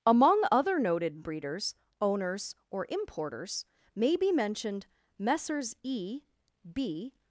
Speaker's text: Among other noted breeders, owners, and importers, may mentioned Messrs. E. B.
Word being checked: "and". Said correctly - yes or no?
no